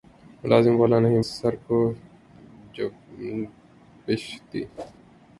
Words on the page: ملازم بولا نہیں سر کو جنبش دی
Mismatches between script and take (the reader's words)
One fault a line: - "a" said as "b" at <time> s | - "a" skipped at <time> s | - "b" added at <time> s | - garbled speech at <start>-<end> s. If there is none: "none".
none